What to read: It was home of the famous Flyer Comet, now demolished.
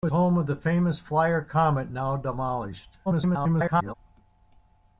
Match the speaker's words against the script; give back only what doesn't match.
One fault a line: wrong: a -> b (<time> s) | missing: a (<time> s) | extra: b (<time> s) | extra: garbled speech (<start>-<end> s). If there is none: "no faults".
missing: was (0.1 s)
extra: garbled speech (3.1-3.9 s)